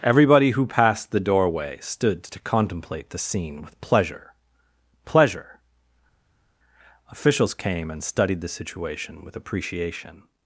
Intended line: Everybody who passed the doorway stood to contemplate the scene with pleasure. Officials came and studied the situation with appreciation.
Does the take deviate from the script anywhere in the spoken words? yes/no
yes